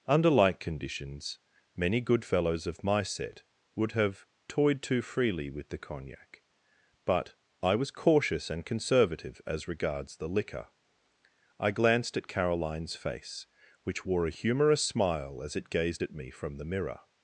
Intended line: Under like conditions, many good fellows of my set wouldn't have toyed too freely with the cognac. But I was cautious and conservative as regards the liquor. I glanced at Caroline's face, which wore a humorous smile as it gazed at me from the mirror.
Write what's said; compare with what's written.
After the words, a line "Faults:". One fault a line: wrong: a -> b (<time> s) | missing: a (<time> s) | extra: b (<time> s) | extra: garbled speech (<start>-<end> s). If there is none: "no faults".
Under like conditions, many good fellows of my set would have toyed too freely with the cognac. But I was cautious and conservative as regards the liquor. I glanced at Caroline's face, which wore a humorous smile as it gazed at me from the mirror.
Faults:
wrong: wouldn't -> would (3.8 s)